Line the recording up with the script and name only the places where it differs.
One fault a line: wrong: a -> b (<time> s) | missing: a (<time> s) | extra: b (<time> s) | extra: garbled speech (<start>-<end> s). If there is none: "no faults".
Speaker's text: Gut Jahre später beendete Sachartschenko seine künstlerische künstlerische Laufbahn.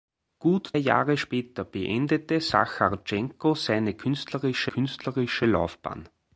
no faults